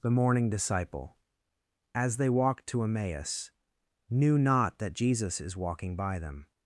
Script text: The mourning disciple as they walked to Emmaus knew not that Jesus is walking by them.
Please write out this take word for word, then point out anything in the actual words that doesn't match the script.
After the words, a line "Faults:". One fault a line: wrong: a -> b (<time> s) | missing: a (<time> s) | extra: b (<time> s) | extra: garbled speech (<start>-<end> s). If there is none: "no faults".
The mourning disciple as they walked to Emmaus knew not that Jesus is walking by them.
Faults:
no faults